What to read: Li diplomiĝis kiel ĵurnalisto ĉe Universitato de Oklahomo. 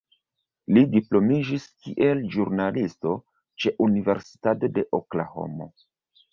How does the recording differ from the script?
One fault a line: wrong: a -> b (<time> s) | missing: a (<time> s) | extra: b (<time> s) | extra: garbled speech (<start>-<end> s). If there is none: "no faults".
no faults